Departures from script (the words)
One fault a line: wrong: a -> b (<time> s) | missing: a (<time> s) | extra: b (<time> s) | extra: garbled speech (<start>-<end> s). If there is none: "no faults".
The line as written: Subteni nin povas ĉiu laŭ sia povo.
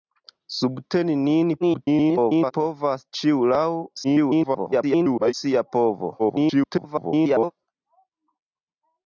extra: garbled speech (1.6-2.5 s)
extra: garbled speech (4.0-5.3 s)
extra: garbled speech (6.2-7.5 s)